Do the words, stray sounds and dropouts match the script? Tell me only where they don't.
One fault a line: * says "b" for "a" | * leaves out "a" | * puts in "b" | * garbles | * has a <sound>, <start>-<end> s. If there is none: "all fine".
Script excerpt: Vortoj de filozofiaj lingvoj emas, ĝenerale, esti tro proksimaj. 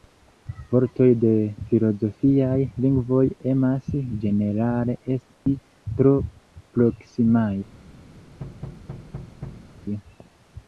* has a dropout, 5.3-5.5 s
* has a thud, 8.4-9.7 s